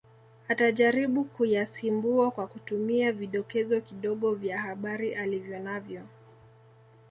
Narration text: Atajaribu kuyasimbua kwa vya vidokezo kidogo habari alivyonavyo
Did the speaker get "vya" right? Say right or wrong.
wrong